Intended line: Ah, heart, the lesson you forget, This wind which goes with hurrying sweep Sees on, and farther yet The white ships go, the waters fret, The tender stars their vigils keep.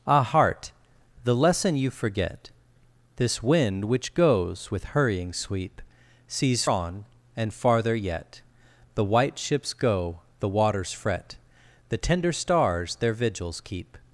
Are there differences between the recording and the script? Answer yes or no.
no